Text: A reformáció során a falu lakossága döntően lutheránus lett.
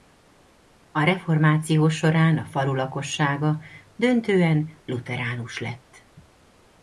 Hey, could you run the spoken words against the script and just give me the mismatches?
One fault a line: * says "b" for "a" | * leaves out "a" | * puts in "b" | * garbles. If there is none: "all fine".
all fine